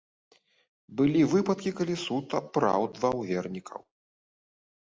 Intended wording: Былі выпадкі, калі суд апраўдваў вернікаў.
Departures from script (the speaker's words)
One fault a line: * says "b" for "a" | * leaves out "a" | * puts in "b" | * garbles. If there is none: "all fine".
all fine